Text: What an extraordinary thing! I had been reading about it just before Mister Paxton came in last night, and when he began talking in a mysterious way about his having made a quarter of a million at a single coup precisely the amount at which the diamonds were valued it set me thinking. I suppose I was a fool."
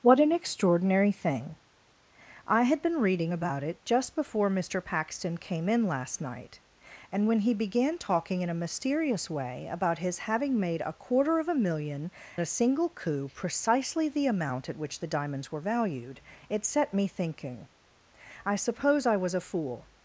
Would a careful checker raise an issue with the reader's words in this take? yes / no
yes